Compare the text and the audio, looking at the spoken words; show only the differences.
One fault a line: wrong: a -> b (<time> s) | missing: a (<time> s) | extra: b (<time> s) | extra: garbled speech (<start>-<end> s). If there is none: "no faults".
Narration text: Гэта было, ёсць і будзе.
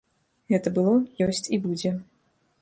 no faults